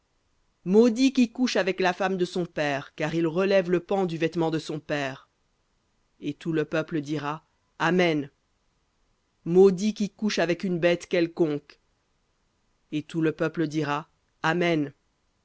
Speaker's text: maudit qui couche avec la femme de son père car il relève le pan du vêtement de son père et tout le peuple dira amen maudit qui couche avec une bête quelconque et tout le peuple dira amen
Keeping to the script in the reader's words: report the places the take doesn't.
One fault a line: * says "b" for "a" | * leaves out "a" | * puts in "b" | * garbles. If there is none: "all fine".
all fine